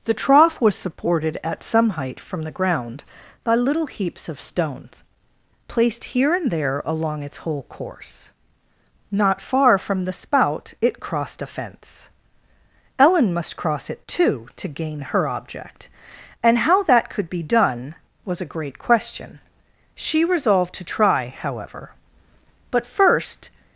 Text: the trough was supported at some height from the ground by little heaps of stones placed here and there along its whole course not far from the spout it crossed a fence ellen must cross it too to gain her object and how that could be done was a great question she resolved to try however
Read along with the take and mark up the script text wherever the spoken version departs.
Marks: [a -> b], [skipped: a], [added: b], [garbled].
the trough was supported at some height from the ground by little heaps of stones placed here and there along its whole course not far from the spout it crossed a fence ellen must cross it too to gain her object and how that could be done was a great question she resolved to try however [added: but first]